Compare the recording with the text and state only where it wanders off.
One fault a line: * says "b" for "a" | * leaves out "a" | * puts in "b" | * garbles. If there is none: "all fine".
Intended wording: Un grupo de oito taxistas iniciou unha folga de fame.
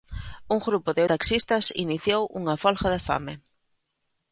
* leaves out "oito"